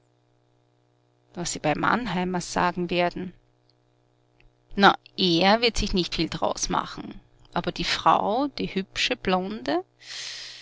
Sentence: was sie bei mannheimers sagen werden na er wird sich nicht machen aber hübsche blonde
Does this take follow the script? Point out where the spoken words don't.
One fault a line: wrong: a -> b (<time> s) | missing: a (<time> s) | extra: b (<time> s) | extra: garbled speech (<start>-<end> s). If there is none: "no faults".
extra: viel d'raus (6.1 s)
extra: die frau die (7.7 s)